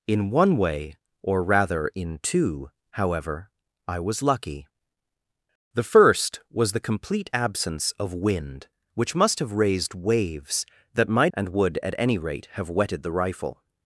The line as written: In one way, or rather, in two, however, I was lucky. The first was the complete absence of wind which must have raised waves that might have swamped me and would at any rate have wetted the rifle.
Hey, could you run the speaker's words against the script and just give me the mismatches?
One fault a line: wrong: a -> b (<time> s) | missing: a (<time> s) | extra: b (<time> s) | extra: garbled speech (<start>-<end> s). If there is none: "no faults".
missing: have swamped me (11.3 s)